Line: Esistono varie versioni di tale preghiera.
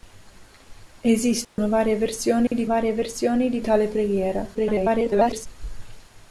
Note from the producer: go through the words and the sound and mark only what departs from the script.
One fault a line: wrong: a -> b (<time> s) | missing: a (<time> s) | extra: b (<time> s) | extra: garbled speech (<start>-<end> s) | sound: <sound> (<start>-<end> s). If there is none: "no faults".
sound: dropout (1.4-1.6 s)
sound: dropout (2.5-2.5 s)
extra: varie versioni di (2.7 s)
extra: garbled speech (4.5-5.5 s)